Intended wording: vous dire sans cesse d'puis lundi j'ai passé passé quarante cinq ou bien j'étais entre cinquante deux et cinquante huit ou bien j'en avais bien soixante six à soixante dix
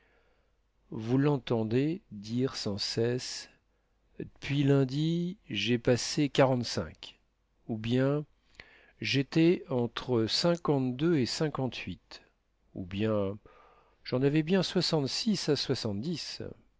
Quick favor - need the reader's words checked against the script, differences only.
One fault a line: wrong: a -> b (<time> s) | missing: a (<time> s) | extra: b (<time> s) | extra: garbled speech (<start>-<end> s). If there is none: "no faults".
extra: l'entendez (1.2 s)
missing: passé (6.3 s)